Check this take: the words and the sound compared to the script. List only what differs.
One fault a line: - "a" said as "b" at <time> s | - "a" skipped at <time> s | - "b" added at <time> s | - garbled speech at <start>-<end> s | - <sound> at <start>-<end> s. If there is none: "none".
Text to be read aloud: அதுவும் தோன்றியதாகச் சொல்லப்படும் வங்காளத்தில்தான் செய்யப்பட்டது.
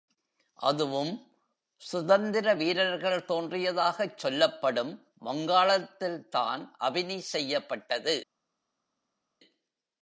- "சுதந்திர வீரர்கள்" added at 1.8 s
- "அபினி" added at 6.8 s